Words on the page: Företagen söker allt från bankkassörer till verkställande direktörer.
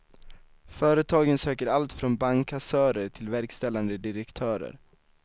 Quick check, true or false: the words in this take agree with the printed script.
true